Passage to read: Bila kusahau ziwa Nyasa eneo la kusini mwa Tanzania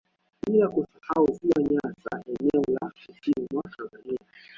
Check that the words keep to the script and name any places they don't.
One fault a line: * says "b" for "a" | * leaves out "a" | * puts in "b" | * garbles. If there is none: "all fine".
all fine